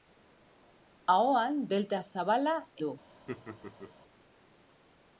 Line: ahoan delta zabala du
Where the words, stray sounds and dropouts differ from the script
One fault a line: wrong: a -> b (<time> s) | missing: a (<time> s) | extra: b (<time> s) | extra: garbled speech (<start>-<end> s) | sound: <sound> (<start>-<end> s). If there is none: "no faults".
sound: laugh (3.3-3.9 s)